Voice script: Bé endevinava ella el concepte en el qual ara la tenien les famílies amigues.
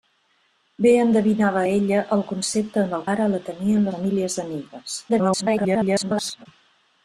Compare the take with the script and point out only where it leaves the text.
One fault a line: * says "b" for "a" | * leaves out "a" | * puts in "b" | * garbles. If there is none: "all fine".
* leaves out "qual"
* leaves out "les"
* garbles